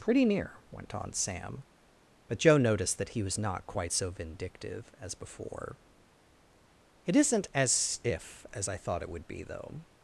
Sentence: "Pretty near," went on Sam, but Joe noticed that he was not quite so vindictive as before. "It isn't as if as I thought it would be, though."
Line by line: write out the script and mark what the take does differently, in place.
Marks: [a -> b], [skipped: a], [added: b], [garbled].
"Pretty near," went on Sam, but Joe noticed that he was not quite so vindictive as before. "It isn't as if as I thought it would be, though."